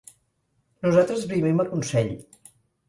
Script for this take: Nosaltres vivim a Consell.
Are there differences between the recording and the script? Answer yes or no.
no